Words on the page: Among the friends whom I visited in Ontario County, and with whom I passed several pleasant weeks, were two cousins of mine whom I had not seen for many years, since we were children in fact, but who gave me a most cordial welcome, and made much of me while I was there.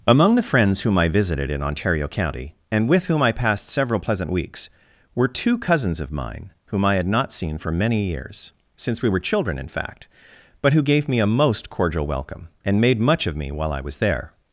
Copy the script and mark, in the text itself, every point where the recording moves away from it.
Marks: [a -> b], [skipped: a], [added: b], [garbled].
Among the friends whom I visited in Ontario County, and with whom I passed several pleasant weeks, were two cousins of mine whom I had not seen for many years, since we were children in fact, but who gave me a most cordial welcome, and made much of me while I was there.